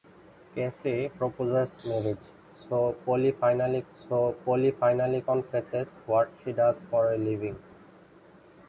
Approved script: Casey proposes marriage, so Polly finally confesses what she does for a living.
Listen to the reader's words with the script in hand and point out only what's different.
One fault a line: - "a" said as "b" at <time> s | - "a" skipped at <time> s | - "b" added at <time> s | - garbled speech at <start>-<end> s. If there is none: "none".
- "so Polly finally" added at 3.9 s